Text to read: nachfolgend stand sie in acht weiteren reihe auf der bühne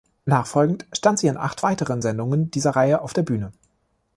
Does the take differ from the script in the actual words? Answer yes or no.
yes